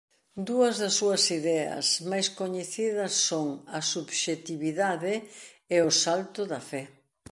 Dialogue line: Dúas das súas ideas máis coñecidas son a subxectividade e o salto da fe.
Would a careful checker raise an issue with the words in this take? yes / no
no